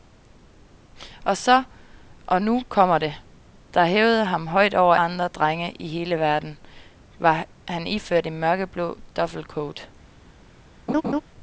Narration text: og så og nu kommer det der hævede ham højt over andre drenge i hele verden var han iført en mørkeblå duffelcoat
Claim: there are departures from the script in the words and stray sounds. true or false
true